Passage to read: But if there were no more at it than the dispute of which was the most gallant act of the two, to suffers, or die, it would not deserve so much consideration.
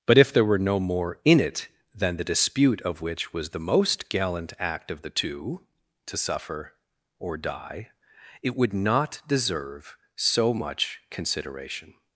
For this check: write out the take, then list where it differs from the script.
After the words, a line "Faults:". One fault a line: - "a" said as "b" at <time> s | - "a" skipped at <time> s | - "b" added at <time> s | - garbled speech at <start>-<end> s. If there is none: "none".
But if there were no more in it than the dispute of which was the most gallant act of the two, to suffer, or die, it would not deserve so much consideration.
Faults:
- "at" said as "in" at 1.2 s
- "suffers" said as "suffer" at 6.2 s